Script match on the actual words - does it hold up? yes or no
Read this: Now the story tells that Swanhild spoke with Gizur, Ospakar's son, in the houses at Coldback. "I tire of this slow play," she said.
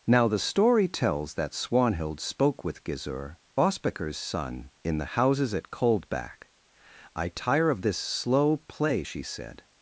yes